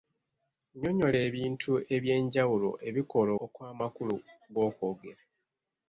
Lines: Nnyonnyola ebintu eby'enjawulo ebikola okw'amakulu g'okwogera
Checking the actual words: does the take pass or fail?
pass